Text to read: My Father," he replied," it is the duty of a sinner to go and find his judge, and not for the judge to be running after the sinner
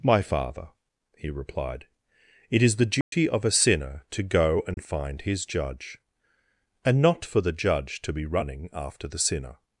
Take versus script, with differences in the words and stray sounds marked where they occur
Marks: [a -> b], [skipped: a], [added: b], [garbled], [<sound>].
My Father," he replied," it is the duty [dropout] of a sinner to go and [dropout] find his judge, and not for the judge to be running after the sinner